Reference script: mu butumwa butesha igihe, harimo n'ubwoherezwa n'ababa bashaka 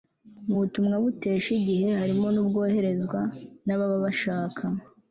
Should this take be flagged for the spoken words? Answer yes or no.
no